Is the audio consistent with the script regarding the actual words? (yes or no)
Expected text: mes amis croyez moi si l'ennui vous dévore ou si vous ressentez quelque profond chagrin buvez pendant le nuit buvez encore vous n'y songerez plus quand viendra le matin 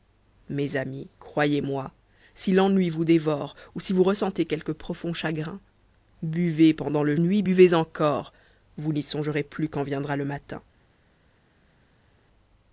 yes